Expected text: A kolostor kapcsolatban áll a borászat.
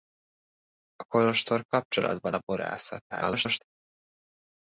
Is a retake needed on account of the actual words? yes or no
yes